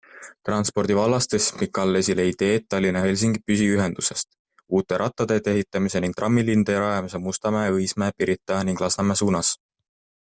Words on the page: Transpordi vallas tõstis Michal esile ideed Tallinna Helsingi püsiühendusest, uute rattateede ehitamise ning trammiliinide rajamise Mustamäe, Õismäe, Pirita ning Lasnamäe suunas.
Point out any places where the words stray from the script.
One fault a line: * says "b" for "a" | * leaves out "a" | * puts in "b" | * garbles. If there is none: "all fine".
all fine